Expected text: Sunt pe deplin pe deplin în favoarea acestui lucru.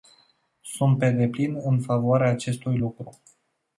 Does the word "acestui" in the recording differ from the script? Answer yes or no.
no